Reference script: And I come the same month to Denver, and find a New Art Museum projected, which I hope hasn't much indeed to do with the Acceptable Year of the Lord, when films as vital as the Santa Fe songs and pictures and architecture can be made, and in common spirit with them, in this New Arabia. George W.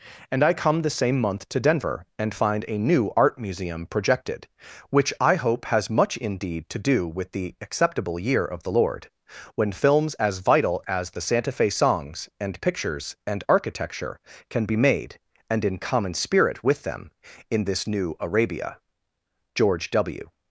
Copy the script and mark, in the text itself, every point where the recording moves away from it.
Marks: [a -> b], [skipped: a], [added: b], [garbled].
And I come the same month to Denver, and find a New Art Museum projected, which I hope [hasn't -> has] much indeed to do with the Acceptable Year of the Lord, when films as vital as the Santa Fe songs and pictures and architecture can be made, and in common spirit with them, in this New Arabia. George W.